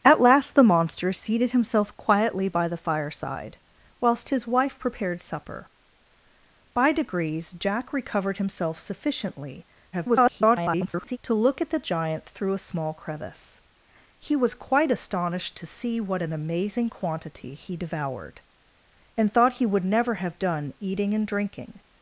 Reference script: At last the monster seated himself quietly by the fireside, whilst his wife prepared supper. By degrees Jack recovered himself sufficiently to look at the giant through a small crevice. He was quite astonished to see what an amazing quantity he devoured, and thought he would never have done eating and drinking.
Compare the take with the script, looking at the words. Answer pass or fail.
fail